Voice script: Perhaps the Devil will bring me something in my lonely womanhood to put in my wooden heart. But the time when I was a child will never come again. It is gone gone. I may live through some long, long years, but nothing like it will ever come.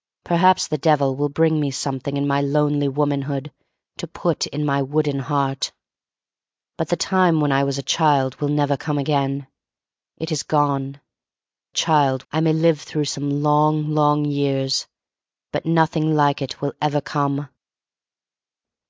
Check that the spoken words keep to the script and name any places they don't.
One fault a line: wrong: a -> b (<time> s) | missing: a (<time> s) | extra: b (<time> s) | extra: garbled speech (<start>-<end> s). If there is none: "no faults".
wrong: gone -> child (11.7 s)